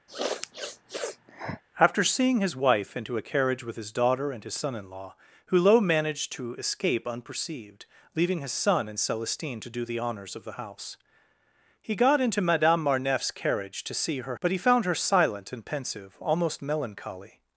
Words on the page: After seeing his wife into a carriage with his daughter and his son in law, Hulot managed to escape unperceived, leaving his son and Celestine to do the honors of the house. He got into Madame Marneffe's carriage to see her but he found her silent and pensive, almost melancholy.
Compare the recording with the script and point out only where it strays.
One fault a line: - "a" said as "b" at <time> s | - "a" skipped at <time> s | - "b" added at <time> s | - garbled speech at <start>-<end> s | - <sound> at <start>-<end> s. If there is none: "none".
- sniff at 0.1-1.6 s